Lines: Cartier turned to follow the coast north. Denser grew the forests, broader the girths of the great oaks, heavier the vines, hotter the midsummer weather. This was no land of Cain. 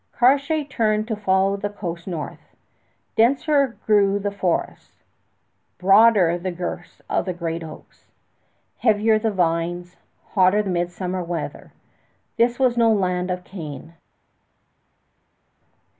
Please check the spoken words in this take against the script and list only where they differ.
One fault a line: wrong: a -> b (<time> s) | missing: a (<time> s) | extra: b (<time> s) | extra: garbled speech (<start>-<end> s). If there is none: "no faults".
missing: the (10.6 s)